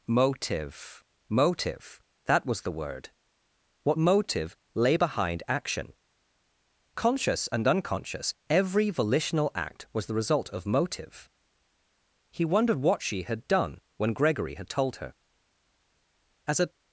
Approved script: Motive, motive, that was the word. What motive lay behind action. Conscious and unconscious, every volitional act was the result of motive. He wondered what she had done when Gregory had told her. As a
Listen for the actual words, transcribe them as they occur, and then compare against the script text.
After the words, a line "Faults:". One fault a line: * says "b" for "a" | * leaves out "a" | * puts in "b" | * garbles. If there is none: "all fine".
Motive, motive, that was the word. What motive lay behind action. Conscious and unconscious, every volitional act was the result of motive. He wondered what she had done when Gregory had told her. As a
Faults:
all fine